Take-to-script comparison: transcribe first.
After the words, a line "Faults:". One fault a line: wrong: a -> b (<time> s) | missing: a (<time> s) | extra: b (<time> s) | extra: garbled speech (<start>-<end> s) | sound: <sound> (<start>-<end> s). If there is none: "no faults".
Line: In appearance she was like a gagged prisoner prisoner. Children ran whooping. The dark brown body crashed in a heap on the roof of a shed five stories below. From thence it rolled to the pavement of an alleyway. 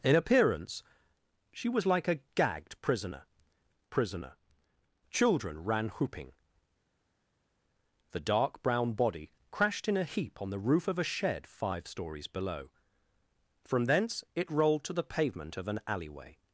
In appearance she was like a gagged prisoner prisoner. Children ran whooping. The dark brown body crashed in a heap on the roof of a shed five stories below. From thence it rolled to the pavement of an alleyway.
Faults:
no faults